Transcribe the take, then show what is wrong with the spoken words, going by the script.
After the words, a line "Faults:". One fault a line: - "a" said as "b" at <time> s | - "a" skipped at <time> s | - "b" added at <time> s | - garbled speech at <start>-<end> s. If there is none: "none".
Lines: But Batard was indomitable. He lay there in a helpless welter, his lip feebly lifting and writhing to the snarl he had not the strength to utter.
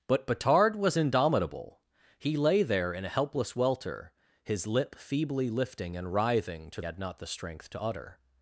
But Batard was indomitable. He lay there in a helpless welter, his lip feebly lifting and writhing to had not the strength to utter.
Faults:
- "the snarl he" skipped at 6.8 s